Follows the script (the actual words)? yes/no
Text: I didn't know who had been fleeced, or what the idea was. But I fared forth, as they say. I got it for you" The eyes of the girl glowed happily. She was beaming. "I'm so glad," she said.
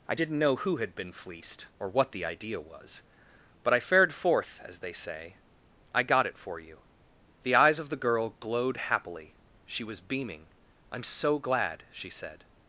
yes